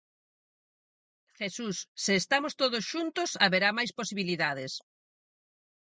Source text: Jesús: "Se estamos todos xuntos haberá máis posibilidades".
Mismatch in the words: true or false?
false